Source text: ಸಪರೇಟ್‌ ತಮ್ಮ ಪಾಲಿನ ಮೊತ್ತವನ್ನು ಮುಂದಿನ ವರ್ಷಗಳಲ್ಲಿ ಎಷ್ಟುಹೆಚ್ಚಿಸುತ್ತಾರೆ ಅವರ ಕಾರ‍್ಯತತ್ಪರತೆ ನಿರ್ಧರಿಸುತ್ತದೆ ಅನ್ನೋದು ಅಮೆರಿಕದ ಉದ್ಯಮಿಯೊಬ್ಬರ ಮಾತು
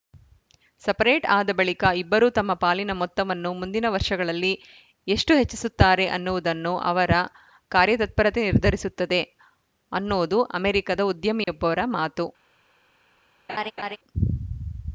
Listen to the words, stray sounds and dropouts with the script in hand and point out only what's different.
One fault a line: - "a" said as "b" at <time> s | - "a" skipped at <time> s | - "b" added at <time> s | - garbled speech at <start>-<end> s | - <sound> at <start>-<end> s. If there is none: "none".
- "ಆದ ಬಳಿಕ ಇಬ್ಬರೂ" added at 1.3 s
- "ಅನ್ನುವುದನ್ನು" added at 6.1 s
- dropout at 11.4-11.5 s
- laugh at 13.5-14.0 s